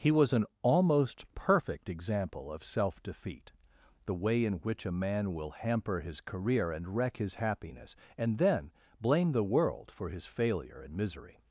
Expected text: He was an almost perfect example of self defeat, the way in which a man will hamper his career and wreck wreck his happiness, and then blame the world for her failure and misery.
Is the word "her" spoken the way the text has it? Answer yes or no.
no